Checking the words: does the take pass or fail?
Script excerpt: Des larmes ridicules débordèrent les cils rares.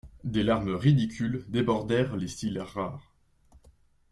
pass